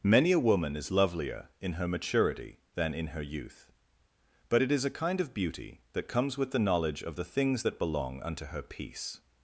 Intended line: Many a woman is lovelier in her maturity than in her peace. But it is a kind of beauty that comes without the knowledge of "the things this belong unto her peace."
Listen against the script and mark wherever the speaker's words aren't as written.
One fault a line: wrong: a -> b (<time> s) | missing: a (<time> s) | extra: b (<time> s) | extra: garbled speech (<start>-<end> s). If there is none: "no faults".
wrong: peace -> youth (3.2 s)
wrong: without -> with (6.4 s)
wrong: this -> that (7.6 s)